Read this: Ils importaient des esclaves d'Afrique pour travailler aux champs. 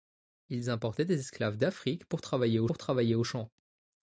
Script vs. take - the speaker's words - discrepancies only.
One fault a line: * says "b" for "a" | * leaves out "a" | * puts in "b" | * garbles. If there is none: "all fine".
* puts in "pour travailler aux"